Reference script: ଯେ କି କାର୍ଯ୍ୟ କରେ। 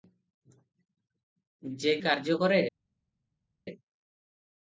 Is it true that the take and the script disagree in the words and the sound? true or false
true